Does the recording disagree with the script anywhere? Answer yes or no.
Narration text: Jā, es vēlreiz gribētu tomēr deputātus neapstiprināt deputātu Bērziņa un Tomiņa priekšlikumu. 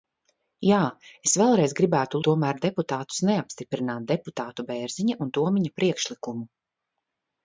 no